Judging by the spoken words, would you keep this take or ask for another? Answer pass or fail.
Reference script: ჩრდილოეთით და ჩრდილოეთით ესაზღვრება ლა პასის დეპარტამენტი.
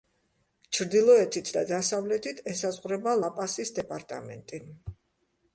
fail